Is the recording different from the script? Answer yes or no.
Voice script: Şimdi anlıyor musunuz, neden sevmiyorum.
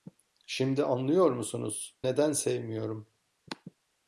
no